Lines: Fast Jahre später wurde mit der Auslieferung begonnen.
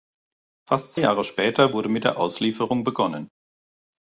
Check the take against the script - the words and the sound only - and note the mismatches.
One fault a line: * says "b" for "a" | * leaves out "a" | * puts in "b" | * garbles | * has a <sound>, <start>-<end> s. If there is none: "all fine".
all fine